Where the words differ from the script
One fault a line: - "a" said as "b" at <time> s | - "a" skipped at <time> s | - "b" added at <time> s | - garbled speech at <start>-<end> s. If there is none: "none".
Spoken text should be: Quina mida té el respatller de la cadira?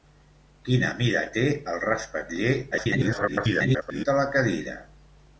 - garbled speech at 2.7-4.0 s